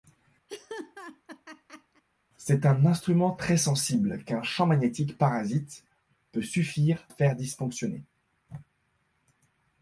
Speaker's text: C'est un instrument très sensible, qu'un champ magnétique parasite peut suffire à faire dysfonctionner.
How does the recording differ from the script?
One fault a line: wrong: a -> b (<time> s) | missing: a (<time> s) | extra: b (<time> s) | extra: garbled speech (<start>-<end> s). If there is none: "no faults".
missing: à (7.1 s)